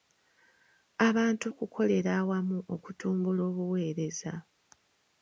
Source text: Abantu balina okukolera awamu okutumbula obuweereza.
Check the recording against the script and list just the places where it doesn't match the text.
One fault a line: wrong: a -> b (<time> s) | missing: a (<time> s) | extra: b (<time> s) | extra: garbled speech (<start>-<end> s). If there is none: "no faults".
missing: balina (1.4 s)